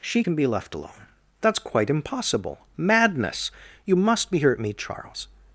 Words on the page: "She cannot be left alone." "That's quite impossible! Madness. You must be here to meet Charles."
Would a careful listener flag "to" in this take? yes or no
yes